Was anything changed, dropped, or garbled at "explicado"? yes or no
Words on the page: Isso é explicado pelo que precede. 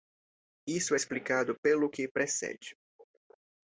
no